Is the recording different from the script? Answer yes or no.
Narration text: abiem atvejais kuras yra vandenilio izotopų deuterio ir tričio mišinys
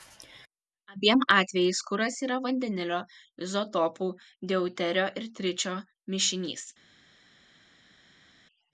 no